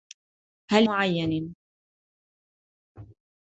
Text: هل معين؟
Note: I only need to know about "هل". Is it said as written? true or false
true